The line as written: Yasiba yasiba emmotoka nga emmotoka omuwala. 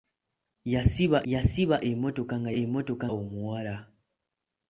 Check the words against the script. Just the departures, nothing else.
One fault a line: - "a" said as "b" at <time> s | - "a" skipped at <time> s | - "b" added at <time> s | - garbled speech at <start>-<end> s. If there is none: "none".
none